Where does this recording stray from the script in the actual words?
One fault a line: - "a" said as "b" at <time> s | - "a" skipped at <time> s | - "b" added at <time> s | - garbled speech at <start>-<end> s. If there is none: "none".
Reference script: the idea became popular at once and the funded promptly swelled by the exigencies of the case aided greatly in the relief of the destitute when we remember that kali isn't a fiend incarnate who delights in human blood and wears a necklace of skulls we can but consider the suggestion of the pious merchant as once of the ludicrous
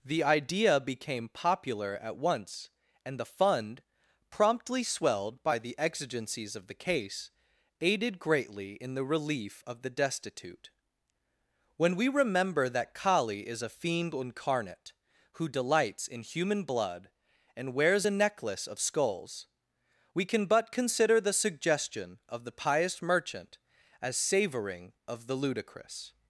- "funded" said as "fund" at 3.2 s
- "isn't" said as "is" at 13.5 s
- "once" said as "savoring" at 24.2 s